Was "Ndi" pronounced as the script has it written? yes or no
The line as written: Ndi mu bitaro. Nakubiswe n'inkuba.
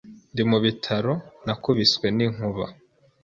yes